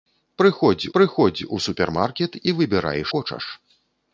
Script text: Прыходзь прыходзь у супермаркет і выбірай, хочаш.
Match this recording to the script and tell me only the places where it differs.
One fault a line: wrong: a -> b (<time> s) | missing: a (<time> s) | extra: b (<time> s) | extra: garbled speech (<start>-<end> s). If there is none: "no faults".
no faults